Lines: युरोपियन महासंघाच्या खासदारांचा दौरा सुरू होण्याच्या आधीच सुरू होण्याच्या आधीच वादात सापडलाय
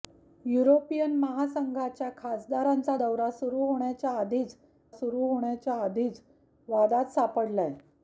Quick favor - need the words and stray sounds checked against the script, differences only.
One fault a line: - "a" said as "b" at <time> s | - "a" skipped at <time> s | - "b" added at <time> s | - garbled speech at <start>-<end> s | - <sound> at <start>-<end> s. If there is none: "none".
none